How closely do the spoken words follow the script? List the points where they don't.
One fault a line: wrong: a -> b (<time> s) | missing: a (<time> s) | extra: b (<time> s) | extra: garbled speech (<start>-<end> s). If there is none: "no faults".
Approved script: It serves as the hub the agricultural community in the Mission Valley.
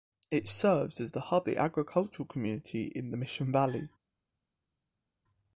no faults